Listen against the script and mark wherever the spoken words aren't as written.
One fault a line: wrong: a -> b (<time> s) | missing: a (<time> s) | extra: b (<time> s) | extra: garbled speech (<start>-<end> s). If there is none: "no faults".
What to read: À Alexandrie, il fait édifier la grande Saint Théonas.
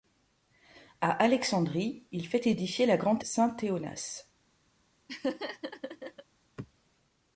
no faults